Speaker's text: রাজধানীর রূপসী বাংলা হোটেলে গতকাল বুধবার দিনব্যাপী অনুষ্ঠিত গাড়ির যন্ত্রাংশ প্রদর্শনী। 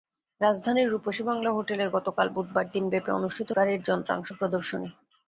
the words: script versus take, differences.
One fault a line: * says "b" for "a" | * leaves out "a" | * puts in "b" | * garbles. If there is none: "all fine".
all fine